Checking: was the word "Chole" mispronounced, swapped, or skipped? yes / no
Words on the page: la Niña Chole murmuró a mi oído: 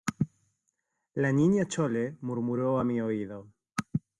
no